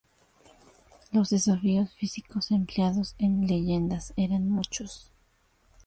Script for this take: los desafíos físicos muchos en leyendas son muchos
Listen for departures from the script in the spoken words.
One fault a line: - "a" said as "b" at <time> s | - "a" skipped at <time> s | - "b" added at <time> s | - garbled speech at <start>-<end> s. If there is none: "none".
- "muchos" said as "empleados" at 2.5 s
- "son" said as "eran" at 4.2 s